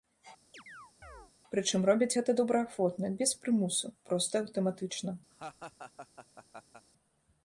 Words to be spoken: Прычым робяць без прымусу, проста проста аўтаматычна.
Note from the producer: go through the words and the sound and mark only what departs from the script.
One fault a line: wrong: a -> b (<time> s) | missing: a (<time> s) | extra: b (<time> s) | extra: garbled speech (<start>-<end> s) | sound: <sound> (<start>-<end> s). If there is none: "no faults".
sound: chirp (0.5-1.3 s)
extra: гэта добраахвотна (2.2 s)
missing: проста (4.3 s)
sound: laugh (5.3-6.9 s)